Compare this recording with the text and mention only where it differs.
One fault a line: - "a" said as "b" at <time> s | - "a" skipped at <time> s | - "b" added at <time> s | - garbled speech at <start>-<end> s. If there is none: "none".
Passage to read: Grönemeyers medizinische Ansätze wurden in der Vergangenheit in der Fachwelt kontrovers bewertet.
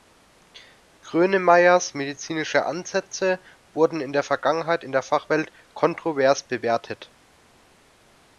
none